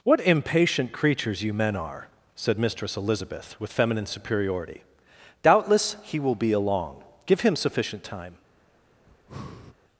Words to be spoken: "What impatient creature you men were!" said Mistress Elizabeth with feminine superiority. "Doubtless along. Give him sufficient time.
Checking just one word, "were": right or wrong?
wrong